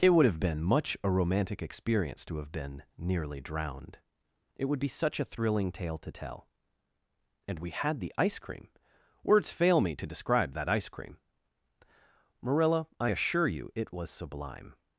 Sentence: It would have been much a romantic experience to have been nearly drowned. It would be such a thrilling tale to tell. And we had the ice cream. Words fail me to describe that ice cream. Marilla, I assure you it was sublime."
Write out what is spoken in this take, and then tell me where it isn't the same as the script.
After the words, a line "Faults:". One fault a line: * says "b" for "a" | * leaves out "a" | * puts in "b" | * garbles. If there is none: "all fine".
It would have been much a romantic experience to have been nearly drowned. It would be such a thrilling tale to tell. And we had the ice cream. Words fail me to describe that ice cream. Marilla, I assure you it was sublime."
Faults:
all fine